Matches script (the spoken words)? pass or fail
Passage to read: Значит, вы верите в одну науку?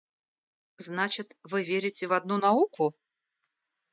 pass